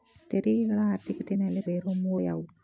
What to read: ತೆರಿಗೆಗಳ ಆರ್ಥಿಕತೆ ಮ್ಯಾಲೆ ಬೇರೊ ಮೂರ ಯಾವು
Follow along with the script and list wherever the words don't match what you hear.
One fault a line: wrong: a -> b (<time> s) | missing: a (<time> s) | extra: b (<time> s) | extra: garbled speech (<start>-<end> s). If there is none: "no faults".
no faults